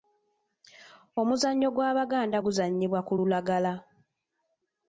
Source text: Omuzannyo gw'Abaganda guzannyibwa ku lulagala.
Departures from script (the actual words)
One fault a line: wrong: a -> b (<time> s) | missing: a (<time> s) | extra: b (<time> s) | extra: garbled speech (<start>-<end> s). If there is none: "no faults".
no faults